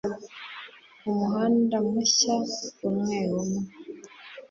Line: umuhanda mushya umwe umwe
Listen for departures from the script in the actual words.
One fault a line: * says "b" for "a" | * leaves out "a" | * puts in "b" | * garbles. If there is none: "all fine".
all fine